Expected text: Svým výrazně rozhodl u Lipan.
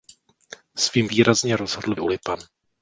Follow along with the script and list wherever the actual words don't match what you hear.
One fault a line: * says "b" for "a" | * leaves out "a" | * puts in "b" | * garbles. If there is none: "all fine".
all fine